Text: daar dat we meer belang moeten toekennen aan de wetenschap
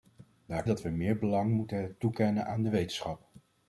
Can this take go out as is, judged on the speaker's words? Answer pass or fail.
pass